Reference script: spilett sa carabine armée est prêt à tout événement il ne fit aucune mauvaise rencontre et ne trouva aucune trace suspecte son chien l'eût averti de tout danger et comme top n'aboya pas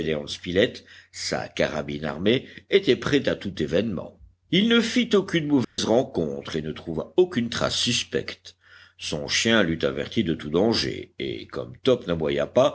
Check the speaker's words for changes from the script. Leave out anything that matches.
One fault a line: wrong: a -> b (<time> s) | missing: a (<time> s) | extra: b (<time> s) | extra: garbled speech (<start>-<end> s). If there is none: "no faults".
wrong: est -> était (2.7 s)